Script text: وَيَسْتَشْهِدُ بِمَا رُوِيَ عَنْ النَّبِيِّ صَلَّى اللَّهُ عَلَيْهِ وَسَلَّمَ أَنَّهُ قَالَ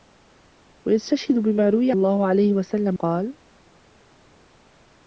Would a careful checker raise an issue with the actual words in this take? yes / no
yes